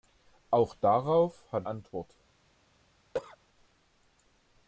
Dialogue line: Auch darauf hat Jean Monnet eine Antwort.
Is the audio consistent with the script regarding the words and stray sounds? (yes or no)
no